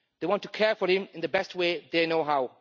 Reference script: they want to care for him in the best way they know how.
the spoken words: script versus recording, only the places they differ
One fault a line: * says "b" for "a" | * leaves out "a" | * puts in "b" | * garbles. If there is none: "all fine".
all fine